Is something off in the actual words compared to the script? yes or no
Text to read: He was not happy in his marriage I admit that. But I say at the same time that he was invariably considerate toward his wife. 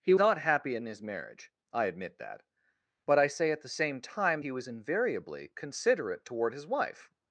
yes